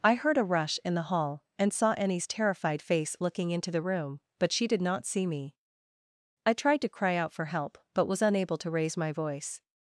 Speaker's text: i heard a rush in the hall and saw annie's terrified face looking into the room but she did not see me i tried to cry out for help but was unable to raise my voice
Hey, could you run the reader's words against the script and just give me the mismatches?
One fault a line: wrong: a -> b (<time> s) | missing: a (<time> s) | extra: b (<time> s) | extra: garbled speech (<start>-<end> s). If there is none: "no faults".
no faults